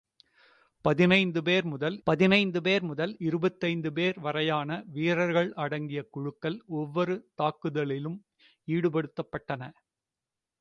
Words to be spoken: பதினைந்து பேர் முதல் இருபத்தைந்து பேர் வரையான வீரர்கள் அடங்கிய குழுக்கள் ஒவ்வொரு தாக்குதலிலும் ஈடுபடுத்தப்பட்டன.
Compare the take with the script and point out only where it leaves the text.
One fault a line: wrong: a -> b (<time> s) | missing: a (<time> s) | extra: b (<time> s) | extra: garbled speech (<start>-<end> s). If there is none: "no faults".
extra: பதினைந்து பேர் முதல் (2.1 s)